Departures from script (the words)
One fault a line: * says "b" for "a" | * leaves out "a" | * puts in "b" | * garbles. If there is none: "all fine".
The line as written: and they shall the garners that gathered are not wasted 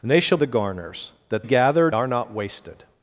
all fine